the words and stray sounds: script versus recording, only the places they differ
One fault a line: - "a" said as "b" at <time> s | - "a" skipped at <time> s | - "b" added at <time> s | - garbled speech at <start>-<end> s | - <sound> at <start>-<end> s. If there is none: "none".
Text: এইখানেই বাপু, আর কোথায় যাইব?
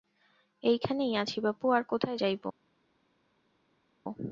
- "আছি" added at 1.1 s